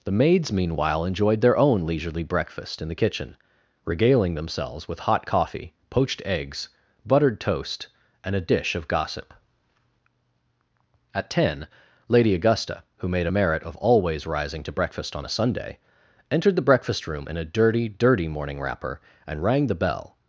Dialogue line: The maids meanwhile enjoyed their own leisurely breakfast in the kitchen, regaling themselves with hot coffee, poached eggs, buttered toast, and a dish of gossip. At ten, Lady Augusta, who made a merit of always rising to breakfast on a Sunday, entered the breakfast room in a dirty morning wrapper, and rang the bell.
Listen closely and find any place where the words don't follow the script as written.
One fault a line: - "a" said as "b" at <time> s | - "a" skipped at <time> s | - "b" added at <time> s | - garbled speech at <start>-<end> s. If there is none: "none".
- "dirty" added at 17.9 s